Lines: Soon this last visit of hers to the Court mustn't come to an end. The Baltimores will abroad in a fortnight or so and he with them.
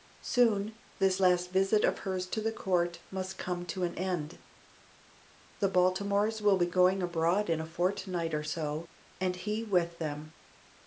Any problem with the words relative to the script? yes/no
yes